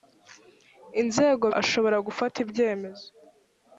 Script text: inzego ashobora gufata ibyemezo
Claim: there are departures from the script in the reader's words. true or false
false